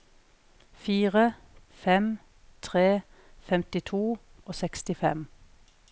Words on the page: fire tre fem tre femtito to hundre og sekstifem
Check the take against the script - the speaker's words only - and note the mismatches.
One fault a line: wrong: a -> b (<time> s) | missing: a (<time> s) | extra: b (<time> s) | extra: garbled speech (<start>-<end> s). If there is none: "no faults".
missing: tre (1.3 s)
missing: to hundre (4.2 s)